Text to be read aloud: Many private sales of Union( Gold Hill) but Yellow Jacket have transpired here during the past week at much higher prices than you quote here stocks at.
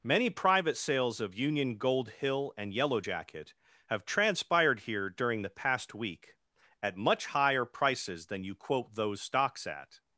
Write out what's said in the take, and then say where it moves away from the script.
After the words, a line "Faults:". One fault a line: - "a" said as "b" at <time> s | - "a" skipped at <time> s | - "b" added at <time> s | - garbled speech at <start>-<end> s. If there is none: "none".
Many private sales of Union( Gold Hill) and Yellow Jacket have transpired here during the past week at much higher prices than you quote those stocks at.
Faults:
- "but" said as "and" at 2.6 s
- "here" said as "those" at 8.9 s